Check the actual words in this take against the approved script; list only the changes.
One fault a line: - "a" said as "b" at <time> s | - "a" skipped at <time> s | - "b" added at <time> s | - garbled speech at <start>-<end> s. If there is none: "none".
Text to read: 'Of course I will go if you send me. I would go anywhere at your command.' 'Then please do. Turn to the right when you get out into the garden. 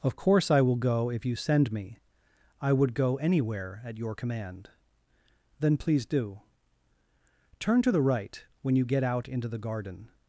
none